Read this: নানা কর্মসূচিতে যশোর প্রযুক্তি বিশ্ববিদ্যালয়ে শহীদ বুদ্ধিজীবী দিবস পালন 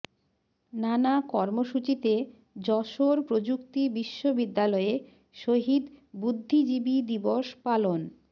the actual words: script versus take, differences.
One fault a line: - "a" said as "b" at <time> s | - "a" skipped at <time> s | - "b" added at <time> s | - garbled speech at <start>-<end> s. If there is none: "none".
none